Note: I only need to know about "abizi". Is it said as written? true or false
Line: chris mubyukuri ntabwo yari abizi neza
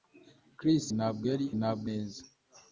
false